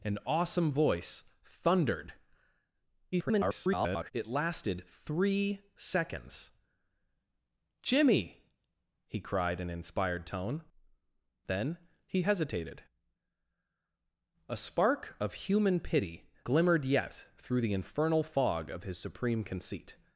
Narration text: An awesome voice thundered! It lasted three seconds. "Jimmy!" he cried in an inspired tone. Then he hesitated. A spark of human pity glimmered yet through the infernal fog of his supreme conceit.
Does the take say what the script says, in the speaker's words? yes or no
no